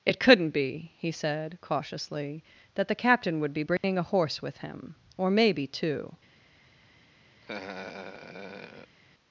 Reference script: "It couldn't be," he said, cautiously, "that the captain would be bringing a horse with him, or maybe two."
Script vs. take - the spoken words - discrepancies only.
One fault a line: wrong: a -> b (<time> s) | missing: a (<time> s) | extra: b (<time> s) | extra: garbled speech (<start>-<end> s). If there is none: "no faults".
no faults